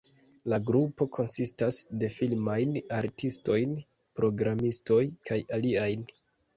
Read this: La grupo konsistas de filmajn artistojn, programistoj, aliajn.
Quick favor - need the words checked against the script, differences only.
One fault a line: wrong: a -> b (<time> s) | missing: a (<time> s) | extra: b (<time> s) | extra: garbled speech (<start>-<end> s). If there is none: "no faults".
extra: kaj (5.3 s)